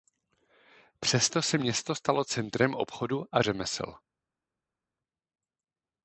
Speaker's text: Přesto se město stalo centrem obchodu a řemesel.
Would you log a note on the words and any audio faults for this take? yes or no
no